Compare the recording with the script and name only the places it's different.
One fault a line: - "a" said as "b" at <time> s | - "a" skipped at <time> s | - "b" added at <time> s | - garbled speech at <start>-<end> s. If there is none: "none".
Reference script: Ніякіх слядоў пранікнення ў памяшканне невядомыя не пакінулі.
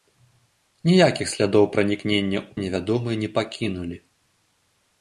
- "памяшканне" skipped at 2.5 s